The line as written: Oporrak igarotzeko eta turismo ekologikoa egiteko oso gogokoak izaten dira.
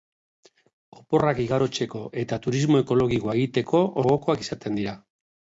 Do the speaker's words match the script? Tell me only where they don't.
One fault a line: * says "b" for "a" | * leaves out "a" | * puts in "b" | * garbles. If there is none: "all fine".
* leaves out "oso"